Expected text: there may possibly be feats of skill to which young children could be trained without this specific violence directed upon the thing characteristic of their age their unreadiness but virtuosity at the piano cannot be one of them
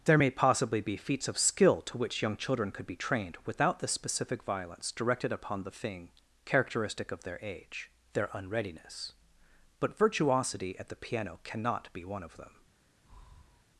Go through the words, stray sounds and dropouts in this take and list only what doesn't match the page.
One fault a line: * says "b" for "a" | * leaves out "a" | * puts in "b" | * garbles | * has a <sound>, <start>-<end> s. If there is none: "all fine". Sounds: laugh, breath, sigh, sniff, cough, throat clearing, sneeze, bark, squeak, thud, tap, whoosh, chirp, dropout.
* says "the" for "this"
* has a breath, 13.0-13.6 s